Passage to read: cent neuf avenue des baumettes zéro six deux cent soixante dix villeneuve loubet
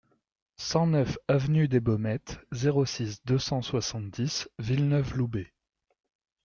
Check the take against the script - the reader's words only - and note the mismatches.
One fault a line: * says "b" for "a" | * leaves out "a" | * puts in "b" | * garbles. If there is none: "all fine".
all fine